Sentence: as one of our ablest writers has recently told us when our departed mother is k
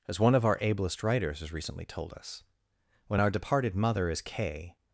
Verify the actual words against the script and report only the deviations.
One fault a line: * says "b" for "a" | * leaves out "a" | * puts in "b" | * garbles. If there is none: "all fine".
all fine